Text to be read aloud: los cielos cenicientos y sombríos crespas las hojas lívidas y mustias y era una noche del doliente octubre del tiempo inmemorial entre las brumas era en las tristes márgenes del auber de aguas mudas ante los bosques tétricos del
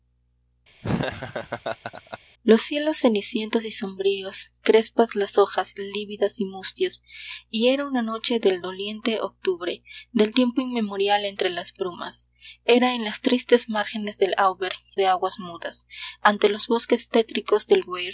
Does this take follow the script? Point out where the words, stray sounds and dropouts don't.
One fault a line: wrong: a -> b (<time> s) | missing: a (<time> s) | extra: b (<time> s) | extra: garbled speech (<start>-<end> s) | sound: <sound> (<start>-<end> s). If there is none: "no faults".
sound: laugh (0.8-2.2 s)